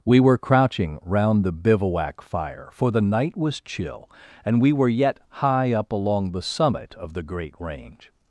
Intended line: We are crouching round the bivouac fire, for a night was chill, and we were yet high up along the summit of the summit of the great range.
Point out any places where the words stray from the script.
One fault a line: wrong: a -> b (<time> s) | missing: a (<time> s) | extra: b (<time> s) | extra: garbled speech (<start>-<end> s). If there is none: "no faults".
wrong: are -> were (0.2 s)
wrong: a -> the (2.9 s)
missing: summit of the (7.2 s)